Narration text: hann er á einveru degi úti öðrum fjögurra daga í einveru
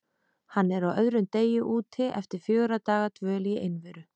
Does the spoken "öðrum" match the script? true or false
false